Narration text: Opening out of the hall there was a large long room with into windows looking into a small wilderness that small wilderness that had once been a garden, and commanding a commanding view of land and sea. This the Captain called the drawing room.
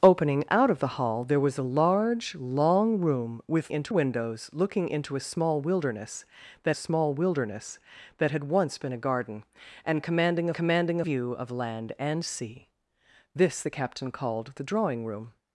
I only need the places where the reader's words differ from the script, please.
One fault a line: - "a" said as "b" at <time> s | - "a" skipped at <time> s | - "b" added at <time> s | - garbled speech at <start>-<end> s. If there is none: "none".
none